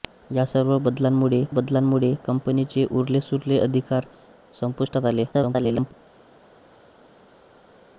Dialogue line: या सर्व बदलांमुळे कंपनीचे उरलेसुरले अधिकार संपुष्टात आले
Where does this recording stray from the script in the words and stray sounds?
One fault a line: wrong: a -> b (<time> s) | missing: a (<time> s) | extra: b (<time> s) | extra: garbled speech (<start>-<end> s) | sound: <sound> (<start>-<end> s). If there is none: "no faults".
extra: बदलांमुळे (1.5 s)
extra: garbled speech (5.3-5.9 s)